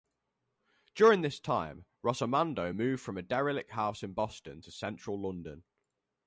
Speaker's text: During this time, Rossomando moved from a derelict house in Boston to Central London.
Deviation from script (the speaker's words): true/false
false